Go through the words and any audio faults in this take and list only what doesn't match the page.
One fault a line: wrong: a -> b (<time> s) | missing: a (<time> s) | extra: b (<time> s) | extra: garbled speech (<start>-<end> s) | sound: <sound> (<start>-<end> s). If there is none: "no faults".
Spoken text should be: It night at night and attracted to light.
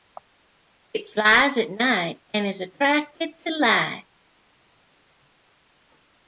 wrong: night -> flies (1.1 s)
extra: is (2.5 s)